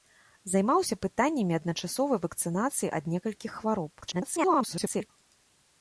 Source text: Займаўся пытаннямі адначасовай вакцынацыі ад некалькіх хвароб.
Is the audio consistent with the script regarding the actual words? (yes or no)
no